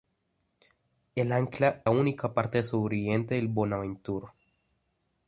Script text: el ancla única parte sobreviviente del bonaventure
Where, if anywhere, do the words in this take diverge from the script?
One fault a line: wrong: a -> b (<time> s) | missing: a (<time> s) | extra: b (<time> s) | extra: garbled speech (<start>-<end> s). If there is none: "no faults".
no faults